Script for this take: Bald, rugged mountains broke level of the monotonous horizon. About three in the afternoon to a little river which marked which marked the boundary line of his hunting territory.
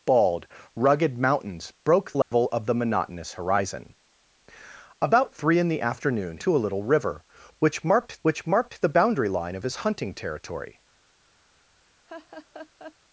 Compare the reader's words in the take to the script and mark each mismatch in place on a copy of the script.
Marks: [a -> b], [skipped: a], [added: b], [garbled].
Bald, rugged mountains broke level of the monotonous horizon. About three in the afternoon to a little river which marked which marked the boundary line of his hunting territory.